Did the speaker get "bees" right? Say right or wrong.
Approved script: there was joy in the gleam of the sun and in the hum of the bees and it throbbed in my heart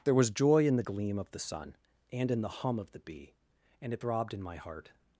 wrong